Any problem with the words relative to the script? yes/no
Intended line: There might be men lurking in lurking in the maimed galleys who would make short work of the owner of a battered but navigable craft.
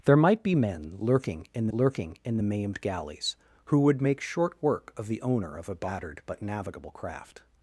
no